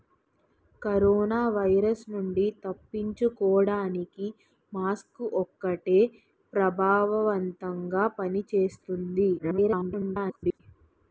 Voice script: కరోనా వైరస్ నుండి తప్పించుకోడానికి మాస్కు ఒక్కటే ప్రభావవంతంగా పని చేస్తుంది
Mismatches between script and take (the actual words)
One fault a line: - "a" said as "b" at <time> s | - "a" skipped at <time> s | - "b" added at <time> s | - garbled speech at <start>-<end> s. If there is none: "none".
- garbled speech at 9.4-10.6 s